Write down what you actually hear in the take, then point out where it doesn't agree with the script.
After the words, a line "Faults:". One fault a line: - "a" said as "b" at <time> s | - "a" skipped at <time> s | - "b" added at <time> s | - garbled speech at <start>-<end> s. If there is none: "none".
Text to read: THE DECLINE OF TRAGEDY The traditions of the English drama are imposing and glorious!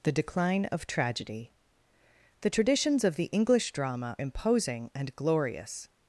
THE DECLINE OF TRAGEDY The traditions of the English drama imposing and glorious!
Faults:
- "are" skipped at 4.2 s